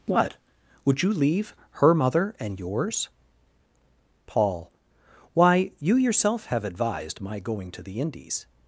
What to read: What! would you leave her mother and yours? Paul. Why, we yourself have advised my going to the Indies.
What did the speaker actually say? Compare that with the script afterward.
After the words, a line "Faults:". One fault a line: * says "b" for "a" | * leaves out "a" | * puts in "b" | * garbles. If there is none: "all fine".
What! would you leave her mother and yours? Paul. Why, you yourself have advised my going to the Indies.
Faults:
* says "you" for "we"